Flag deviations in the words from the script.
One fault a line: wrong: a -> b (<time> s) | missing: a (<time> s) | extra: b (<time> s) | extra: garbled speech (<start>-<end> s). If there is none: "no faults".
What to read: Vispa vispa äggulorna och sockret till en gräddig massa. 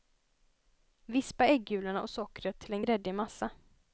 missing: vispa (1.4 s)